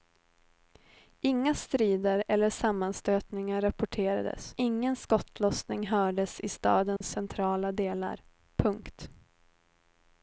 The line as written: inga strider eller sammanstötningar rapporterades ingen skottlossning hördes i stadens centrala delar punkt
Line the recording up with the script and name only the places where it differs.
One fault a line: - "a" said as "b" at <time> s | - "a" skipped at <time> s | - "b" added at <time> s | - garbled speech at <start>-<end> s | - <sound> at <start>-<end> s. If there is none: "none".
- dropout at 7.0-7.0 s